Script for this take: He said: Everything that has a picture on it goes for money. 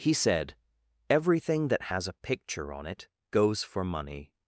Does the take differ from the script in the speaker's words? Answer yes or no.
no